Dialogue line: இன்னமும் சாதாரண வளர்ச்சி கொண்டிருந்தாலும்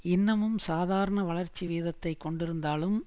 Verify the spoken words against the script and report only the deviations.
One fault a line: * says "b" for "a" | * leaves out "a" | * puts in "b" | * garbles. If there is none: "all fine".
* puts in "வீதத்தை"